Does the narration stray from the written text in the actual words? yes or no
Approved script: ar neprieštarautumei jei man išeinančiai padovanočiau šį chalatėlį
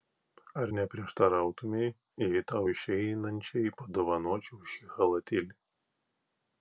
yes